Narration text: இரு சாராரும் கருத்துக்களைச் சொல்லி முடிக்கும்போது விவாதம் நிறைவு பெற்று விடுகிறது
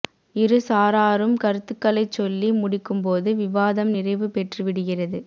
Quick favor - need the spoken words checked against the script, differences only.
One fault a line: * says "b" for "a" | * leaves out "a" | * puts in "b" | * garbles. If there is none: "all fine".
all fine